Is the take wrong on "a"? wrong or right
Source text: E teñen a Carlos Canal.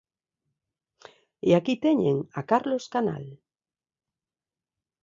right